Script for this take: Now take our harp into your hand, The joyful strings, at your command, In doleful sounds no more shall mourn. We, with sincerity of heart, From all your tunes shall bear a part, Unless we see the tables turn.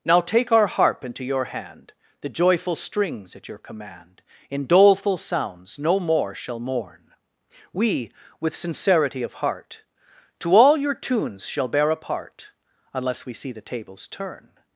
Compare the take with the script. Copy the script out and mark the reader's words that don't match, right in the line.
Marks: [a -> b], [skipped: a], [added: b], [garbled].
Now take our harp into your hand, The joyful strings, at your command, In doleful sounds no more shall mourn. We, with sincerity of heart, [From -> To] all your tunes shall bear a part, Unless we see the tables turn.